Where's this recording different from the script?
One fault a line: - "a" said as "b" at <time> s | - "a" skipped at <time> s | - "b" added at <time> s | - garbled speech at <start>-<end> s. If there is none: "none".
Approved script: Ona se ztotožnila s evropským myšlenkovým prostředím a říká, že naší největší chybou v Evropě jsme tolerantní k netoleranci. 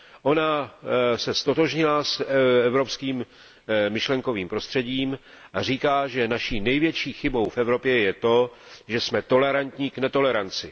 - "je to že" added at 8.0 s